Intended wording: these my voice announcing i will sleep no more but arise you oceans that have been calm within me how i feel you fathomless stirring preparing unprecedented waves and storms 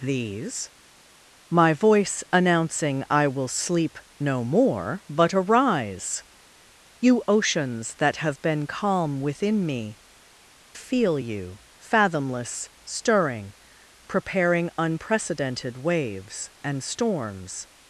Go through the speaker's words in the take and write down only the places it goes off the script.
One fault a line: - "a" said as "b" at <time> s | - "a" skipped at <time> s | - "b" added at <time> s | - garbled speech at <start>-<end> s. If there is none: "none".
- "how i" skipped at 10.0 s